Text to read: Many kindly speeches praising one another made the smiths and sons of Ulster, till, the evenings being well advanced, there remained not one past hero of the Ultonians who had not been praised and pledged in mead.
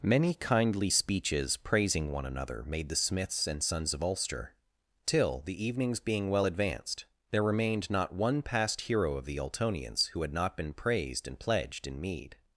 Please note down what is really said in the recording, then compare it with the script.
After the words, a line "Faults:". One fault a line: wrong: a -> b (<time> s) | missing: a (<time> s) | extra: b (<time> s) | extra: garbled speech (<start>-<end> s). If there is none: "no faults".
Many kindly speeches praising one another made the smiths and sons of Ulster, till, the evenings being well advanced, there remained not one past hero of the Ultonians who had not been praised and pledged in mead.
Faults:
no faults